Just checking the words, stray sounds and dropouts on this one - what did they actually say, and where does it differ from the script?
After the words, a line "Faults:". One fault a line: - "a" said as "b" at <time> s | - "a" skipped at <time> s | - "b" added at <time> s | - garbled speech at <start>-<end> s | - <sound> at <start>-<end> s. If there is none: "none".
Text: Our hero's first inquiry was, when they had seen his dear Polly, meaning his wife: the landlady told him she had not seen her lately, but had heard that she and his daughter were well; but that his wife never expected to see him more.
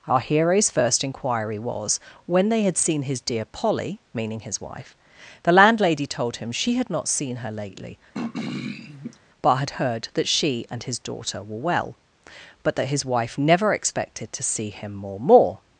Our hero's first inquiry was, when they had seen his dear Polly, meaning his wife: the landlady told him she had not seen her lately, but had heard that she and his daughter were well; but that his wife never expected to see him more more.
Faults:
- throat clearing at 8.1-9.2 s
- "more" added at 15.2 s